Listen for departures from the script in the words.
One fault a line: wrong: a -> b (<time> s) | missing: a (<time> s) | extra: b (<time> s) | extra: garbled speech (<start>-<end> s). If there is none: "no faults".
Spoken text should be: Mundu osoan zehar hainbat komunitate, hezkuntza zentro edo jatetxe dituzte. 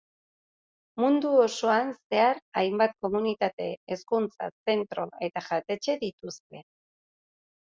wrong: edo -> eta (5.3 s)